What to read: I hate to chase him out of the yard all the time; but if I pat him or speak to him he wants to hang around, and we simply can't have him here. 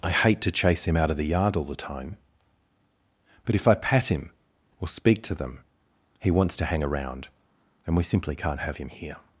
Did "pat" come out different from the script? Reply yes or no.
no